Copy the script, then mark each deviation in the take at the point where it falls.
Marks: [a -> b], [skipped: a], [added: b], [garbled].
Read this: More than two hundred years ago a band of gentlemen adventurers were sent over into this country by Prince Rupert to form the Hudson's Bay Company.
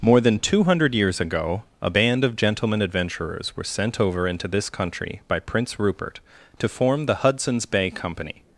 More than two hundred years ago a band of gentlemen adventurers were sent over into this country by Prince Rupert to form the Hudson's Bay Company.